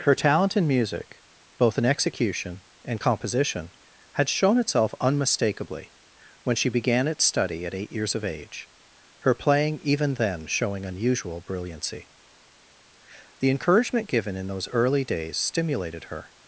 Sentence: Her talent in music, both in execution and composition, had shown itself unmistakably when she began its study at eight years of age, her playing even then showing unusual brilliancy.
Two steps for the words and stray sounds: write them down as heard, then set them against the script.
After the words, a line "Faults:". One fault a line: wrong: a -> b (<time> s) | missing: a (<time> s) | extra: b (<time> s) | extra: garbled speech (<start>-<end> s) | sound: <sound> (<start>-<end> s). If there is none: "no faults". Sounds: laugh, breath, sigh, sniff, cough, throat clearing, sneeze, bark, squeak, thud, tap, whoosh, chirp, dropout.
Her talent in music, both in execution and composition, had shown itself unmistakably when she began its study at eight years of age, her playing even then showing unusual brilliancy. The encouragement given in those early days stimulated her
Faults:
extra: The encouragement given in those early days stimulated her (13.4 s)